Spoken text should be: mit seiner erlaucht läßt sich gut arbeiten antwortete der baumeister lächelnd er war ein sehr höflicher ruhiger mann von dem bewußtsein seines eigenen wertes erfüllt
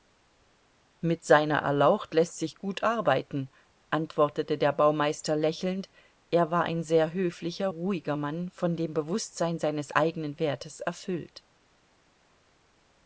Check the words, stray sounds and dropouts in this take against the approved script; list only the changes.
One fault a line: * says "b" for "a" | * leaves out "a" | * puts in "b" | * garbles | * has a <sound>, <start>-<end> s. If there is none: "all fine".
all fine